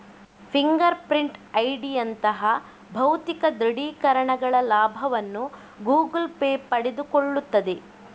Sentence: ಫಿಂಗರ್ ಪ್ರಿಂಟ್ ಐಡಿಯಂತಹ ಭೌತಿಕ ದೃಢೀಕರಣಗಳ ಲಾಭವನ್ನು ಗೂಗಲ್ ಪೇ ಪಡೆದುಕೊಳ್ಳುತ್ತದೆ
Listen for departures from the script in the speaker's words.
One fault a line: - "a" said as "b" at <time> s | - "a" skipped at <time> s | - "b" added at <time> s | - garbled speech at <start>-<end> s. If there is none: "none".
none